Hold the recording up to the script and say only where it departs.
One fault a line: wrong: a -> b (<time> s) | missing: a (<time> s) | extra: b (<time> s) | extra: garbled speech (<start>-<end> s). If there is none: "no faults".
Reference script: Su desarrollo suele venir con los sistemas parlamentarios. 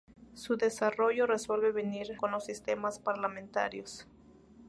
no faults